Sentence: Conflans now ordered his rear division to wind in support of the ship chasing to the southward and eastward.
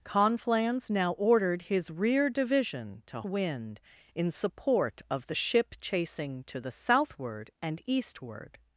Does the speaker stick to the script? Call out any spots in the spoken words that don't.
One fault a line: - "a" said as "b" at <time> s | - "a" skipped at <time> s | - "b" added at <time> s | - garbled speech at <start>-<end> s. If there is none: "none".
none